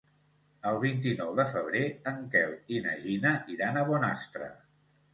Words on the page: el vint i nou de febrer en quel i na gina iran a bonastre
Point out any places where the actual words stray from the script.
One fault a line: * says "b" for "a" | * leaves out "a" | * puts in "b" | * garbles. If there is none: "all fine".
all fine